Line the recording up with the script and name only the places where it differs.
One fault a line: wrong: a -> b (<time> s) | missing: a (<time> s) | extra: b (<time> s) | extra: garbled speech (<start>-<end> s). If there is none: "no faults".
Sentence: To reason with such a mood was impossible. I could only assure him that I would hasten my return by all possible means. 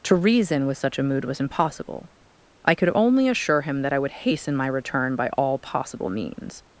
no faults